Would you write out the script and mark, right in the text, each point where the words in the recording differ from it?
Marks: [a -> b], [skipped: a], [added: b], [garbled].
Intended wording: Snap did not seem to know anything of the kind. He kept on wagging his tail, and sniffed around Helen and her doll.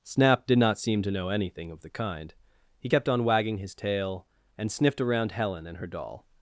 Snap did not seem to know anything of the kind. He kept on wagging his tail, and sniffed around Helen and her doll.